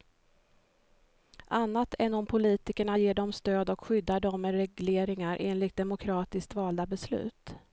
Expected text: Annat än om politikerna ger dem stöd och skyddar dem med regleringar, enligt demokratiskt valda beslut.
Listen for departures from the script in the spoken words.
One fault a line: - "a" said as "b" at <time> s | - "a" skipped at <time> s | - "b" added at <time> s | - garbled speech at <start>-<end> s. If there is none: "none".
none